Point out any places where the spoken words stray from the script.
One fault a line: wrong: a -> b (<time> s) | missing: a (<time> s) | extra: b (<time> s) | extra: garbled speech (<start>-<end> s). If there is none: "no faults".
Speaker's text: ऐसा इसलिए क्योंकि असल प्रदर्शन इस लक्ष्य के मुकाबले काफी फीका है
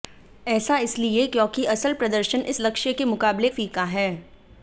missing: काफी (3.5 s)